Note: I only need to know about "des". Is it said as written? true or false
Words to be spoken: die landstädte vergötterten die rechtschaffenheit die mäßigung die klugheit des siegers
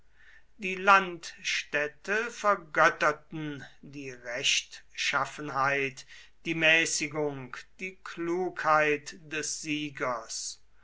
true